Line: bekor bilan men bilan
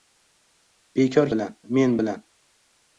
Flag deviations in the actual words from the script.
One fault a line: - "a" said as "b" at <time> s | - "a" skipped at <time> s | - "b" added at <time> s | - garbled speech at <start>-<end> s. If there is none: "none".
none